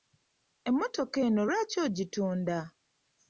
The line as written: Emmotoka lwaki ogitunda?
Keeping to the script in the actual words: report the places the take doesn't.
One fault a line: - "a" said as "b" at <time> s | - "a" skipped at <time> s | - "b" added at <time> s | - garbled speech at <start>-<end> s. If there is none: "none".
- "eno" added at 1.3 s